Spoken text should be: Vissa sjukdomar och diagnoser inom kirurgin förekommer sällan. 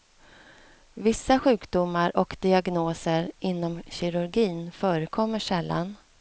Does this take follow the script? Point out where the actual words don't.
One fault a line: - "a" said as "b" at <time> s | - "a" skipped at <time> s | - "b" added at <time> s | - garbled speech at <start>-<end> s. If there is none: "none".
none